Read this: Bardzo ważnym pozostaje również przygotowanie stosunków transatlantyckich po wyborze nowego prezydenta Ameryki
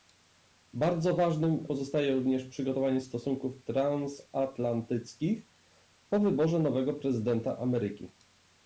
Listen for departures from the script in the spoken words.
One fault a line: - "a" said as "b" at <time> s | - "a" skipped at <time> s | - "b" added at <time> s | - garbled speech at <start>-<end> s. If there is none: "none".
none